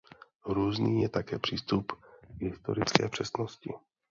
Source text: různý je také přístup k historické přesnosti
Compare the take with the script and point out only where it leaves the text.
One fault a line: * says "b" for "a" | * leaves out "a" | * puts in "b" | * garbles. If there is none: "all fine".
all fine